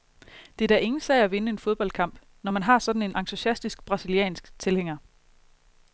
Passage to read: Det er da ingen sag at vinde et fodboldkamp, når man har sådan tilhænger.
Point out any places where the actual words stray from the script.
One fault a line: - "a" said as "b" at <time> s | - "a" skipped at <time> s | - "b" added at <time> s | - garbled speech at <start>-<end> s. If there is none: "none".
- "et" said as "en" at 1.5 s
- "en entusiastisk brasiliansk" added at 3.0 s